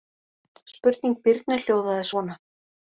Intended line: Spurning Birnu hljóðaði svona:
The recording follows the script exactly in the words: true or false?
true